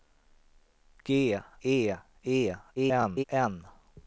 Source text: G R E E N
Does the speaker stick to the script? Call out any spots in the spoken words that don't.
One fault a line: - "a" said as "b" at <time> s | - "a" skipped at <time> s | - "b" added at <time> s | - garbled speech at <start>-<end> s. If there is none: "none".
- "R" skipped at 1.4 s
- garbled speech at 2.7-3.2 s